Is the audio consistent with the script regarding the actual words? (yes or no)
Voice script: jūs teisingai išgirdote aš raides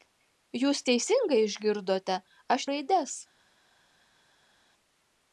yes